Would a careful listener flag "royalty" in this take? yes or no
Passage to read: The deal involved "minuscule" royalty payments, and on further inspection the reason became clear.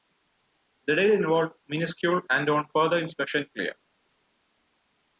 yes